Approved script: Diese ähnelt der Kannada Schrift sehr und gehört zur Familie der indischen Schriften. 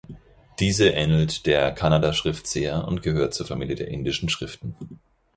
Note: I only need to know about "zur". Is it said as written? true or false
true